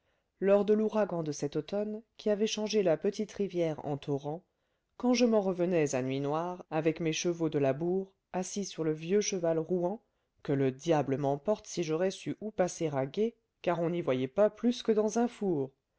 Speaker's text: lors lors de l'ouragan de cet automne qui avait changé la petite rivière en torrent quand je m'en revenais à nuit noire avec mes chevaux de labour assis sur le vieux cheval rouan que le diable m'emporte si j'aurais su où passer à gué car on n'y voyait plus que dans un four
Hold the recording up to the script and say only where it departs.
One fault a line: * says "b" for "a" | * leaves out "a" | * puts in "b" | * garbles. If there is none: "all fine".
* leaves out "lors"
* puts in "pas"